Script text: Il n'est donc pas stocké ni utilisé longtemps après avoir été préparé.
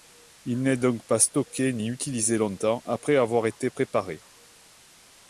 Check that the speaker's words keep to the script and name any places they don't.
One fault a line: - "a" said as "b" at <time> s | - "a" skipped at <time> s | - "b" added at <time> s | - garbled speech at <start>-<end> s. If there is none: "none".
none